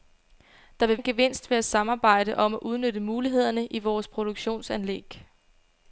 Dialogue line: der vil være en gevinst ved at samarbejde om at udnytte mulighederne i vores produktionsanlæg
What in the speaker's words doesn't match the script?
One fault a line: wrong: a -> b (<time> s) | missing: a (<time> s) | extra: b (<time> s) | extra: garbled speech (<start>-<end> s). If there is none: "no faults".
missing: være (1.0 s)